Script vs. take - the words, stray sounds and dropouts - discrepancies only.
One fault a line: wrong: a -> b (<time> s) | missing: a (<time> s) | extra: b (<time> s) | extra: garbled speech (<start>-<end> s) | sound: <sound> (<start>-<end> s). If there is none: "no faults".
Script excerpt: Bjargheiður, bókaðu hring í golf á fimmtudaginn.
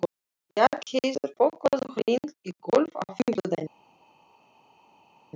no faults